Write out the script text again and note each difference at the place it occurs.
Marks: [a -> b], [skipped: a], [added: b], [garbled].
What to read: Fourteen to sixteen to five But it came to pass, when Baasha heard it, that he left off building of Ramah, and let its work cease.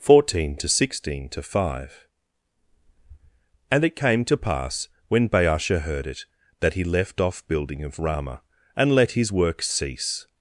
Fourteen to sixteen to five [But -> And] it came to pass, when Baasha heard it, that he left off building of Ramah, and let [its -> his] work cease.